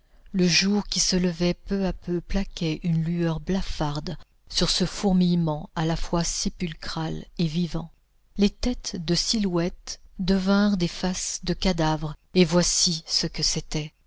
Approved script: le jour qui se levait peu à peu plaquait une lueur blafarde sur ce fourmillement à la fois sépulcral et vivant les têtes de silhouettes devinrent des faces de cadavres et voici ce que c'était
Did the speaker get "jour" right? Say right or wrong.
right